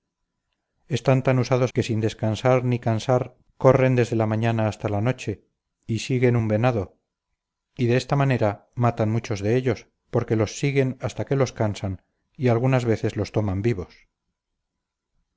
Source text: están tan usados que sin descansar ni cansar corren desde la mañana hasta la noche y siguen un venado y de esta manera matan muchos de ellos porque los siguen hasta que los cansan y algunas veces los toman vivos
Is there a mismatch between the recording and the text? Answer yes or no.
no